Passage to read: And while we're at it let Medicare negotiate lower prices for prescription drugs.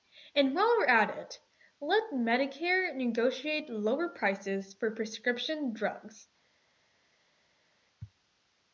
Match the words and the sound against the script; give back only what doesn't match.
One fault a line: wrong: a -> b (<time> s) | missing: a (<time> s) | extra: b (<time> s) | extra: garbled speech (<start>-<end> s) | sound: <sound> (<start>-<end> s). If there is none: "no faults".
no faults